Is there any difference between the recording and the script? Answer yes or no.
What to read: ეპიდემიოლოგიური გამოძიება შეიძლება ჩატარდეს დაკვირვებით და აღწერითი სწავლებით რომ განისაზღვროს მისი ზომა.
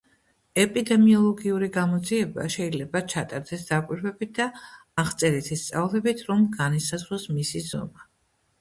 no